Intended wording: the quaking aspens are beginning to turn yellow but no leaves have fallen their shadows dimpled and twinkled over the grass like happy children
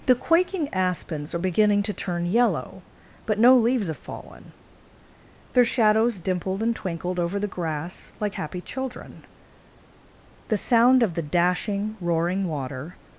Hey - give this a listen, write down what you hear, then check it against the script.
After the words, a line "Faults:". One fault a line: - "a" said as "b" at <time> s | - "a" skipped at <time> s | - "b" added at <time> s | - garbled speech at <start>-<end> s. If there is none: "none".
the quaking aspens are beginning to turn yellow but no leaves have fallen their shadows dimpled and twinkled over the grass like happy children the sound of the dashing roaring water
Faults:
- "the sound of the dashing roaring water" added at 10.5 s